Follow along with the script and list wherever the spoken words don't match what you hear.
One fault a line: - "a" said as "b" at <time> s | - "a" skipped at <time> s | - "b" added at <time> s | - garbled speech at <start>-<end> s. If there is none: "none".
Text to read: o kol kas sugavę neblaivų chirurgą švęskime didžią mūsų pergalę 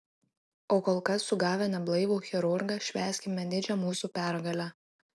none